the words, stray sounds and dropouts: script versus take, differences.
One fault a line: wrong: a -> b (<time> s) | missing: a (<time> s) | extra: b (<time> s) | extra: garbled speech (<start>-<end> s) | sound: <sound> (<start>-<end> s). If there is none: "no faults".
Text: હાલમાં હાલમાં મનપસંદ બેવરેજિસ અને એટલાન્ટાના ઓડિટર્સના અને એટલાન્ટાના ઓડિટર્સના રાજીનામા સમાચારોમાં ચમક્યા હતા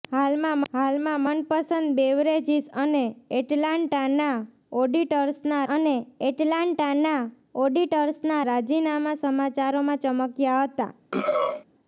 sound: throat clearing (11.1-11.6 s)